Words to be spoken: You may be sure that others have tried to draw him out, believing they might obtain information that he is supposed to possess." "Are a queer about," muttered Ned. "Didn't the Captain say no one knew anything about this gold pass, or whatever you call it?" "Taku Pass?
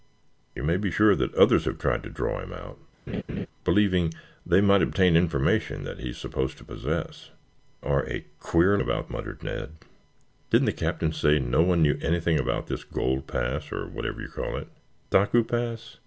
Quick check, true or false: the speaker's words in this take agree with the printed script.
true